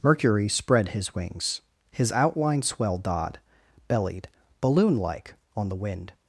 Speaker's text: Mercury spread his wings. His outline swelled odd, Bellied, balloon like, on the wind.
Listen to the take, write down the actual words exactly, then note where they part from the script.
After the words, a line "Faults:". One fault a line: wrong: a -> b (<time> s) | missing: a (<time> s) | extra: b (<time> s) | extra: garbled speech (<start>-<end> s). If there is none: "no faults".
Mercury spread his wings. His outline swelled odd, Bellied, balloon like, on the wind.
Faults:
no faults